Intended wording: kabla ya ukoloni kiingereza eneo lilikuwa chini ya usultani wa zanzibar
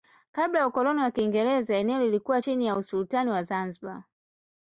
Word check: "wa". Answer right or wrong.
right